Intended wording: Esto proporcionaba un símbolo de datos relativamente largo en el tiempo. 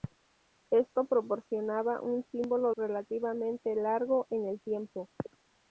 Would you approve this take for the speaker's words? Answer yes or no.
no